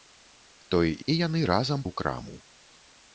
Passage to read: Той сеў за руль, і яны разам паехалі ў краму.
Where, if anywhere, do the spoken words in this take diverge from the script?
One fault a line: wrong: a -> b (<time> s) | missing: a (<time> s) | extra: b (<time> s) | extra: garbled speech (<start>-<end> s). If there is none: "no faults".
missing: сеў за руль (0.9 s)
missing: паехалі (1.8 s)